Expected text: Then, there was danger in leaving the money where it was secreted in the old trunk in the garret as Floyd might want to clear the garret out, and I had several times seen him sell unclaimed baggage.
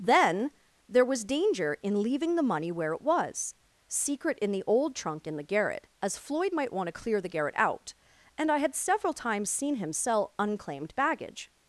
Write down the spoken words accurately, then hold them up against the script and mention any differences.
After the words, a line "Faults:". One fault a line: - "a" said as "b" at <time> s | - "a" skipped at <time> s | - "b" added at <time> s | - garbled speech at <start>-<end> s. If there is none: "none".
Then, there was danger in leaving the money where it was secret in the old trunk in the garret as Floyd might want to clear the garret out, and I had several times seen him sell unclaimed baggage.
Faults:
- "secreted" said as "secret" at 3.9 s